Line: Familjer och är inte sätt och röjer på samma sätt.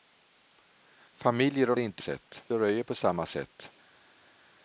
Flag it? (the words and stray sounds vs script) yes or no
no